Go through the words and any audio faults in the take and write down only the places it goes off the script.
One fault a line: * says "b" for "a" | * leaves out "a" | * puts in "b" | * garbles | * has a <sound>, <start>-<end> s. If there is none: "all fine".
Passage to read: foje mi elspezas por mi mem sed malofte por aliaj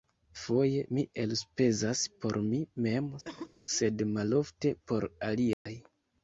* has a cough, 3.2-3.6 s
* has a dropout, 5.5-5.7 s